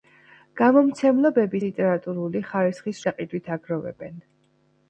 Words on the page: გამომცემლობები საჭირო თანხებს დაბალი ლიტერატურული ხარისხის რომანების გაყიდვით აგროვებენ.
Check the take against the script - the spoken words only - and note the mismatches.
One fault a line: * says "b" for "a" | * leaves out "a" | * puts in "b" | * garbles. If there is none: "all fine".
* leaves out "საჭირო თანხებს დაბალი"
* leaves out "რომანების"